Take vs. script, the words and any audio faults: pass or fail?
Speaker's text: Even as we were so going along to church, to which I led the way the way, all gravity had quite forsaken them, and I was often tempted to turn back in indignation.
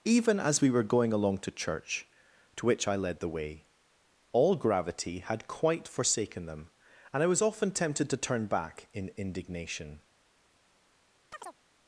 fail